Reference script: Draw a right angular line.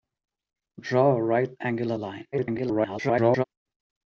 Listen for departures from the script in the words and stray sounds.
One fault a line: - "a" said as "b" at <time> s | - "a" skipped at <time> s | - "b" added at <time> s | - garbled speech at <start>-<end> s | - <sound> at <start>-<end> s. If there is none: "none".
- garbled speech at 2.3-3.4 s